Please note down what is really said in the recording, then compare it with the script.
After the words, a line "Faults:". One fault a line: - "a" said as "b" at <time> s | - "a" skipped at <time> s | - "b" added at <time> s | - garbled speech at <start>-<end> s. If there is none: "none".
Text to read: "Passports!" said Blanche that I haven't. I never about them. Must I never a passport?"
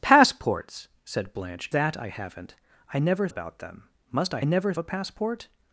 "Passports!" said Blanche that I haven't. I never about them. Must I never a passport?"
Faults:
none